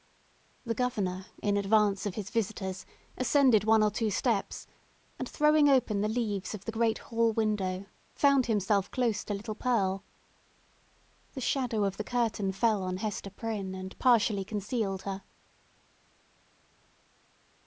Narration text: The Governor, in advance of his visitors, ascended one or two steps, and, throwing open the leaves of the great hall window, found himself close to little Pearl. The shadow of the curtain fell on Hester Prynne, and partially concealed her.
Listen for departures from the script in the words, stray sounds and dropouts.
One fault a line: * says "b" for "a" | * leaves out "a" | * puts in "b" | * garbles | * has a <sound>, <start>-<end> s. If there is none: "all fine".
all fine